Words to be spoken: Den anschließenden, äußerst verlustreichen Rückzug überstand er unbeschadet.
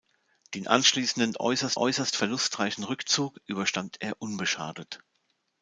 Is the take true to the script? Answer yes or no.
no